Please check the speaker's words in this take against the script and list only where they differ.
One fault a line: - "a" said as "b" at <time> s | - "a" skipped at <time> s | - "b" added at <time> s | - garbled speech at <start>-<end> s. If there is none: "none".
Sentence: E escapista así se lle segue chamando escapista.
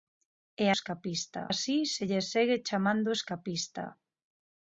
none